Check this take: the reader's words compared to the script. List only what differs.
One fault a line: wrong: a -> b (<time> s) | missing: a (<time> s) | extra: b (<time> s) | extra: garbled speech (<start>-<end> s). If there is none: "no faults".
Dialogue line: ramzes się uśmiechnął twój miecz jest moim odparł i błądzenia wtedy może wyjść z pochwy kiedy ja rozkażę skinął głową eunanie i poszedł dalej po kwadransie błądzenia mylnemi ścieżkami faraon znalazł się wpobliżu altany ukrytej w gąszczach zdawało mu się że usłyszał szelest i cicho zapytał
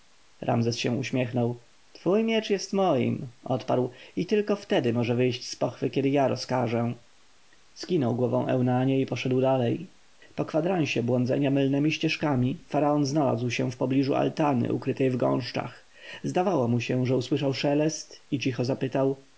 wrong: błądzenia -> tylko (4.2 s)